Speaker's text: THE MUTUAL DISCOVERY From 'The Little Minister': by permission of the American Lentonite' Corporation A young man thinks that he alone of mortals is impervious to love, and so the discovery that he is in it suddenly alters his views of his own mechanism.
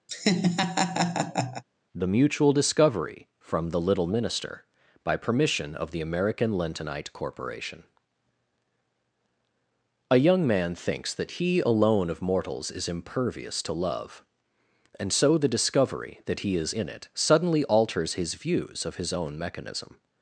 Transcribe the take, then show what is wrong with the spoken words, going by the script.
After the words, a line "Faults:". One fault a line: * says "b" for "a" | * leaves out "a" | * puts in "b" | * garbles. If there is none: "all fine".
THE MUTUAL DISCOVERY From 'The Little Minister': by permission of the American Lentonite' Corporation A young man thinks that he alone of mortals is impervious to love, and so the discovery that he is in it suddenly alters his views of his own mechanism.
Faults:
all fine